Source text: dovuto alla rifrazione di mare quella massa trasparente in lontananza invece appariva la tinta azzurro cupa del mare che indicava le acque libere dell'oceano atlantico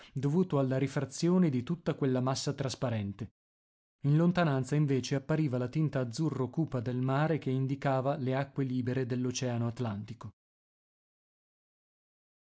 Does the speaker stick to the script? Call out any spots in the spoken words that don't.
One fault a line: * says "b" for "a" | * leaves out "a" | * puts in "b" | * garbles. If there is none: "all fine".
* says "tutta" for "mare"